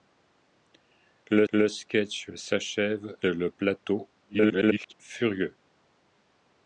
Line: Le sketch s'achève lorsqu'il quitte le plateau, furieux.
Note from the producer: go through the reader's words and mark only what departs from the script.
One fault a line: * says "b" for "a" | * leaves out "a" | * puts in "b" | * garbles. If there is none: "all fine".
* puts in "le"
* leaves out "lorsqu'il quitte"
* garbles